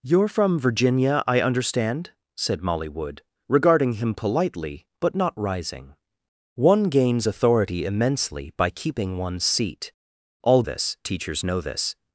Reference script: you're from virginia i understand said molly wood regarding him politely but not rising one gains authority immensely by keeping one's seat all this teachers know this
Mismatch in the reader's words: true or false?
false